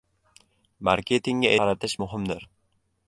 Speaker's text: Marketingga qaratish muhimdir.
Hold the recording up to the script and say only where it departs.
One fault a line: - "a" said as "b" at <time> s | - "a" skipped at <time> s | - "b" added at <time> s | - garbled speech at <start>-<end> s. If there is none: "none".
none